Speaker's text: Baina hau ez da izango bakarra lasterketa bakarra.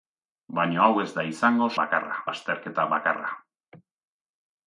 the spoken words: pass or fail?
pass